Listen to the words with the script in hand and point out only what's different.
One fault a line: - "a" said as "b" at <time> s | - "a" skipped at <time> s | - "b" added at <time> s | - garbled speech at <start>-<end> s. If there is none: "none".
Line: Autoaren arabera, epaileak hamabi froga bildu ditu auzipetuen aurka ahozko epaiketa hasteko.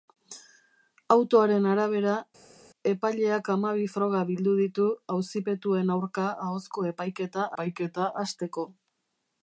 - "epaiketa" added at 7.5 s